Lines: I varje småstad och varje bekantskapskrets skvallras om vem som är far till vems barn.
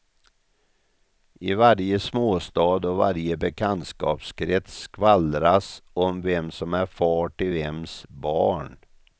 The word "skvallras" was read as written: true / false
true